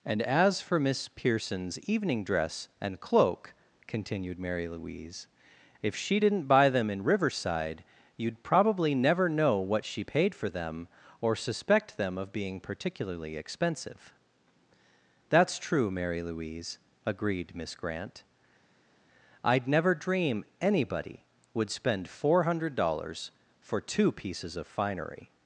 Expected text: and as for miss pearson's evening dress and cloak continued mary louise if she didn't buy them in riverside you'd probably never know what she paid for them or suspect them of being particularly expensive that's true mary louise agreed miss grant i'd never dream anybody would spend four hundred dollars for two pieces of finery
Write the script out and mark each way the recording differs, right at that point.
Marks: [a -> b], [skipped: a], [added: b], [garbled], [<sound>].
and as for miss pearson's evening dress and cloak continued mary louise if she didn't buy them in riverside you'd probably never know what she paid for them or suspect them of being particularly expensive that's true mary louise agreed miss grant i'd never dream anybody would spend four hundred dollars for two pieces of finery